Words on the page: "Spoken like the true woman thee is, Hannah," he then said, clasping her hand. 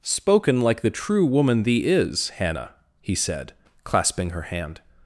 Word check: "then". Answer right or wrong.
wrong